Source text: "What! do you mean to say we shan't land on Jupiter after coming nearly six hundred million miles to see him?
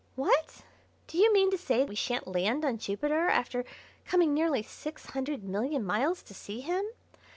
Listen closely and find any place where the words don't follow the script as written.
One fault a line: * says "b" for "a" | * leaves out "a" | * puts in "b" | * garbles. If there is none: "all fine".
all fine